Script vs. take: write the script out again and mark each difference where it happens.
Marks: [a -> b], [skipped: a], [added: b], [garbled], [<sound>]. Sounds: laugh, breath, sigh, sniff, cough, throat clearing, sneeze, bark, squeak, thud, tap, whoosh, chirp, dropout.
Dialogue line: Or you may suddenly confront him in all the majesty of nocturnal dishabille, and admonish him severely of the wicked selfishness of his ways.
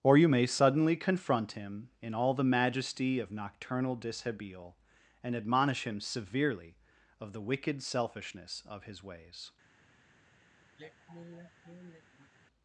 Or you may suddenly confront him in all the majesty of nocturnal dishabille, and admonish him severely of the wicked selfishness of his ways. [sigh]